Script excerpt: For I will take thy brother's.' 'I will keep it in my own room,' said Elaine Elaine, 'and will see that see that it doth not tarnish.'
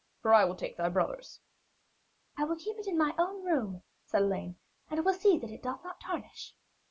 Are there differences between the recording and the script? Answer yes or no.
yes